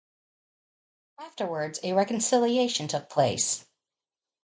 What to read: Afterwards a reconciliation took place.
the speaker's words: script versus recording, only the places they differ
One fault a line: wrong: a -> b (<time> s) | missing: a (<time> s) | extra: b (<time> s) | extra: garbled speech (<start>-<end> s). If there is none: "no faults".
no faults